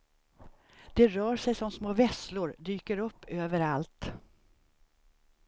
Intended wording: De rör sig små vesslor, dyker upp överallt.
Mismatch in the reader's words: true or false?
true